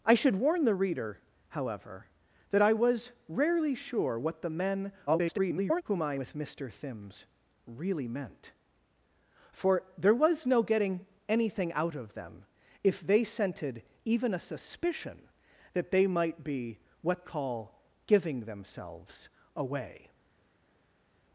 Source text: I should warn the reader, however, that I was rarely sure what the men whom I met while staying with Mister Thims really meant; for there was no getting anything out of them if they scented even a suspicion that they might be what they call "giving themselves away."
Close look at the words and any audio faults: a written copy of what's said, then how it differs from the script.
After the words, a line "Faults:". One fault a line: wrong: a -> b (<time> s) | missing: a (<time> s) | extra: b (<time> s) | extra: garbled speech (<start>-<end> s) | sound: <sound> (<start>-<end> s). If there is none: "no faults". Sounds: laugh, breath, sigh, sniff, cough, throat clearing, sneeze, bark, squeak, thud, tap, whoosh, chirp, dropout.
I should warn the reader, however, that I was rarely sure what the men [garbled] whom I with Mister Thims really meant; for there was no getting anything out of them if they scented even a suspicion that they might be what call "giving themselves away."
Faults:
extra: garbled speech (5.1-5.8 s)
missing: met while staying (6.2 s)
missing: they (17.3 s)